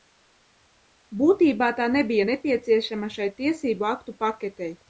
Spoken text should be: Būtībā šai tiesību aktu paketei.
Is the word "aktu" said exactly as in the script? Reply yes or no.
yes